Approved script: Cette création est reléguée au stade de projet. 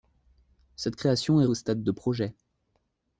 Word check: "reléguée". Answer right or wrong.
wrong